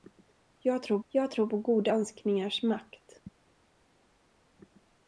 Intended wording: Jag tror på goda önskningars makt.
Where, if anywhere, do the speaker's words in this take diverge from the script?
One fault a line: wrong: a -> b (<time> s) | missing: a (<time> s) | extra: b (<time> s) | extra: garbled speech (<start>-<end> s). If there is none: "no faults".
extra: jag tror (1.1 s)